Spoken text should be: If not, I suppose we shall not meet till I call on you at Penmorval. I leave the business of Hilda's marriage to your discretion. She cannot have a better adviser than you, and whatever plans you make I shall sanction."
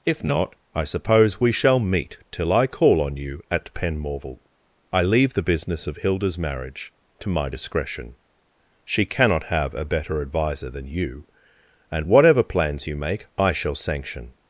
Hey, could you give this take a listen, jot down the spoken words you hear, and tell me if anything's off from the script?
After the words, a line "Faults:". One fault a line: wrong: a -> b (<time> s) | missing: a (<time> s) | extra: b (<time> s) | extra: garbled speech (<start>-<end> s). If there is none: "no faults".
If not, I suppose we shall meet till I call on you at Penmorval. I leave the business of Hilda's marriage to my discretion. She cannot have a better adviser than you, and whatever plans you make I shall sanction."
Faults:
missing: not (1.8 s)
wrong: your -> my (7.3 s)